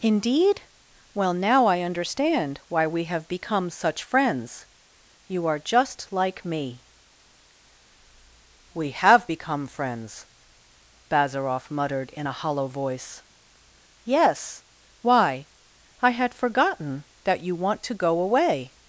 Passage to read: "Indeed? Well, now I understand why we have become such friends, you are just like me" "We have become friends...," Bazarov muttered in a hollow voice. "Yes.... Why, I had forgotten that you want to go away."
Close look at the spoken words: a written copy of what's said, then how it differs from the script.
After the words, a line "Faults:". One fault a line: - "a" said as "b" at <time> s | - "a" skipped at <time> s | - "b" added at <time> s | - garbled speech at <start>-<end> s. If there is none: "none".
"Indeed? Well, now I understand why we have become such friends, you are just like me" "We have become friends...," Bazarov muttered in a hollow voice. "Yes.... Why, I had forgotten that you want to go away."
Faults:
none